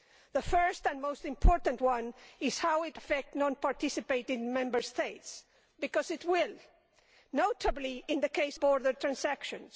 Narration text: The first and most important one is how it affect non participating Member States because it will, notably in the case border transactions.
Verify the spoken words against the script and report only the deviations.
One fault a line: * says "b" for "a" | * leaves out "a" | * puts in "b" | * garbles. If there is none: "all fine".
all fine